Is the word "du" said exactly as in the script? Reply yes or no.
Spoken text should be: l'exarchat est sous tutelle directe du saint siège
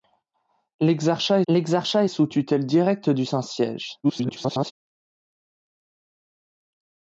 yes